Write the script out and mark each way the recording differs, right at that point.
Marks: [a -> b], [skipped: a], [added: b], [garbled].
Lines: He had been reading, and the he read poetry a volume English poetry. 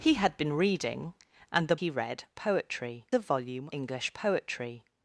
He had been reading, and the he read poetry a volume English poetry.